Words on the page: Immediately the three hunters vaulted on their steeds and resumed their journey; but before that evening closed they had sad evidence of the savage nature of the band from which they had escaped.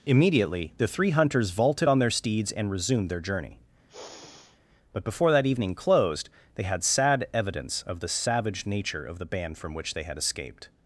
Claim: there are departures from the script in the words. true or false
false